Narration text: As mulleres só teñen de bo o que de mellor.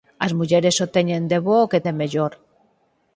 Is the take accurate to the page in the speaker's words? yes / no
yes